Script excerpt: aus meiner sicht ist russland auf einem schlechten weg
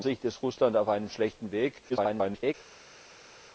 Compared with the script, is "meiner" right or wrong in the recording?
wrong